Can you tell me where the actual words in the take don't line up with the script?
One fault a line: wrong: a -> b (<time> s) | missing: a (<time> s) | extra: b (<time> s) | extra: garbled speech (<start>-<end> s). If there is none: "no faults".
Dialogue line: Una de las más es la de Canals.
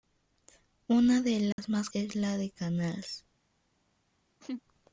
no faults